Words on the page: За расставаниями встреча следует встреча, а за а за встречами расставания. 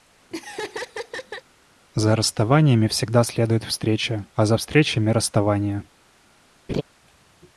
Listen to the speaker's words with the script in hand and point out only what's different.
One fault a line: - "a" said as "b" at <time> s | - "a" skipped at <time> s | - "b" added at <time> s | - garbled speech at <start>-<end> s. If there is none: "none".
- "встреча" said as "всегда" at 2.9 s
- "а за" skipped at 4.5 s